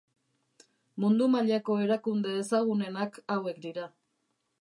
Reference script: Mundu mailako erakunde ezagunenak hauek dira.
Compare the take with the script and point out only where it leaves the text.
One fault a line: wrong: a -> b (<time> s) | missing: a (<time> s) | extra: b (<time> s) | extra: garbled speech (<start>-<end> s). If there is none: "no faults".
no faults